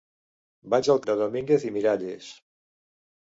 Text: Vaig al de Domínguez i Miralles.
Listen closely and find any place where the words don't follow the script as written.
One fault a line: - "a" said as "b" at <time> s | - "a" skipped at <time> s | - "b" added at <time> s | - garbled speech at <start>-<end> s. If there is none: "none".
none